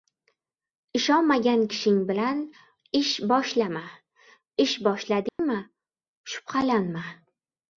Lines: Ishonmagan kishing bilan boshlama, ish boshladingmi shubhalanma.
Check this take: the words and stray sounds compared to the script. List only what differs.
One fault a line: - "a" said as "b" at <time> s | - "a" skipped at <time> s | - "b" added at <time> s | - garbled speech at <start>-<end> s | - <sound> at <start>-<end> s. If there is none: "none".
- "ish" added at 3.0 s
- dropout at 5.3-5.4 s